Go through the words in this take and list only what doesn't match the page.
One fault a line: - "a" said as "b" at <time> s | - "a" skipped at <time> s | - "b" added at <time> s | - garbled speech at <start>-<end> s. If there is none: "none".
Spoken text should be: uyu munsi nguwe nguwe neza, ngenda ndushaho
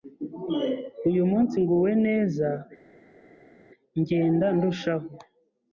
- "nguwe" skipped at 1.9 s